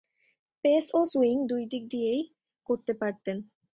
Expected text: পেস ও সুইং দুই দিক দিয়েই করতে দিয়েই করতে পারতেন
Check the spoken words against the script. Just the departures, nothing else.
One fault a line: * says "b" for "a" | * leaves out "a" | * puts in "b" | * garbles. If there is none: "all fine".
* leaves out "দিয়েই করতে"